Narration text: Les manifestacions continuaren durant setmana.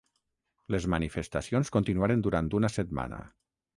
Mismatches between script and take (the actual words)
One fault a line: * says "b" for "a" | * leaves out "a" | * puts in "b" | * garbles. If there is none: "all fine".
* puts in "una"